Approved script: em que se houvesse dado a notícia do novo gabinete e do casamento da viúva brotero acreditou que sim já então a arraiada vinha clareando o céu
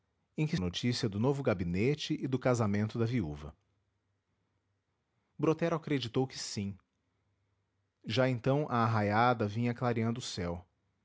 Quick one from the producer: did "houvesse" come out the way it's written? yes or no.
no